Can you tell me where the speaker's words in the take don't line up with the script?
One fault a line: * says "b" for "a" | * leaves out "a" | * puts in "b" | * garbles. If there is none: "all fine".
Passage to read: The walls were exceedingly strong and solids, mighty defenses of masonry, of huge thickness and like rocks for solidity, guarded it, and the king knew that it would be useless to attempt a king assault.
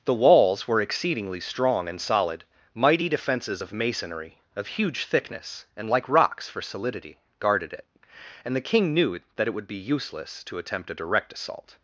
* says "solid" for "solids"
* says "direct" for "king"